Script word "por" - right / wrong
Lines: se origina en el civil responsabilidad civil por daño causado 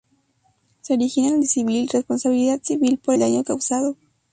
right